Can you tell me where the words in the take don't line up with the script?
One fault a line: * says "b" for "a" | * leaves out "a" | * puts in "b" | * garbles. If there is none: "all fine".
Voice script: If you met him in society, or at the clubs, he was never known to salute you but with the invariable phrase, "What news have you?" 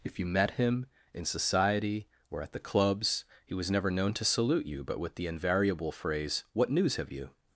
all fine